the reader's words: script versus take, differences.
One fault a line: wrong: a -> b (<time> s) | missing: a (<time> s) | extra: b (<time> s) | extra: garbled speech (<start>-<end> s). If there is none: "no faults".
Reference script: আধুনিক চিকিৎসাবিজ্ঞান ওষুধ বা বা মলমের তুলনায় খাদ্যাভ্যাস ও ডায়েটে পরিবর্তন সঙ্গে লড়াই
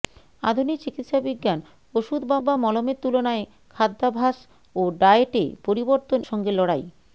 no faults